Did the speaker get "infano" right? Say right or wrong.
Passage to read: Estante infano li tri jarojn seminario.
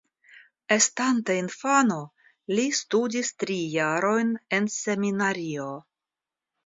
right